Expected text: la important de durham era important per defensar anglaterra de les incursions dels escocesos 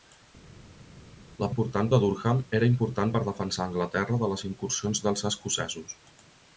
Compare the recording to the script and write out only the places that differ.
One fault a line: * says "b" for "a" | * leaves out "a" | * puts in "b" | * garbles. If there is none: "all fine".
all fine